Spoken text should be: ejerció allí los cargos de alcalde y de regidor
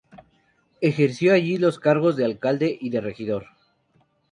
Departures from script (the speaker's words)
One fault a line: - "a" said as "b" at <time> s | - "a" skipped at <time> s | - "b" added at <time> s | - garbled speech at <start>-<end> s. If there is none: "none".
none